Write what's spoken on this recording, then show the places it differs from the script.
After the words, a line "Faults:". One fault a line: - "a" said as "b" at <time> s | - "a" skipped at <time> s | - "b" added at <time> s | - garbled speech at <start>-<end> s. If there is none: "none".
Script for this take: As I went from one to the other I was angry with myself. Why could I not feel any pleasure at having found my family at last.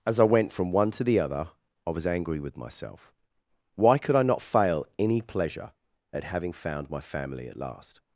As I went from one to the other I was angry with myself. Why could I not fail any pleasure at having found my family at last.
Faults:
- "feel" said as "fail" at 4.4 s